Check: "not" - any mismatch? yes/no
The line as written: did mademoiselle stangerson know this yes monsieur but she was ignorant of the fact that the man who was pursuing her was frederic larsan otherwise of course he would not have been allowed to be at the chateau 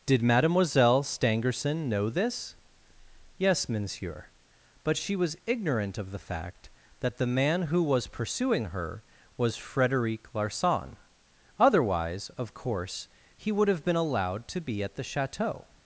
yes